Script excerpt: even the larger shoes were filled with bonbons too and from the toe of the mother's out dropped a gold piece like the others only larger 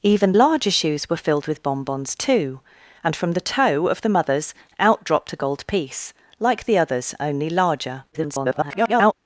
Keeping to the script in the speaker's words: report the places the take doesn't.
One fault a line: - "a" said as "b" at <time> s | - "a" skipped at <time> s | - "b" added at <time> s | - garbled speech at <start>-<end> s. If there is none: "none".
- "the" skipped at 0.3 s
- garbled speech at 8.1-9.1 s